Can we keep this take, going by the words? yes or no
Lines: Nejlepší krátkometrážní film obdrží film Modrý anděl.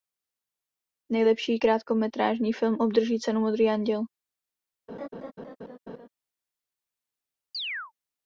no